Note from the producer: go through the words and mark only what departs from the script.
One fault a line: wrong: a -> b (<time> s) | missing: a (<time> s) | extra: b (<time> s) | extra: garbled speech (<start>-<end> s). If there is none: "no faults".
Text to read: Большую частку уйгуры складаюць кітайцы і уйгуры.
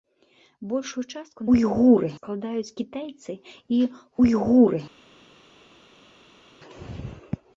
no faults